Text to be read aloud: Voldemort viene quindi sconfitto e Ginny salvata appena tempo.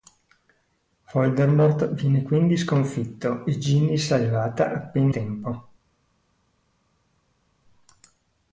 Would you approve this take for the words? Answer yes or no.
yes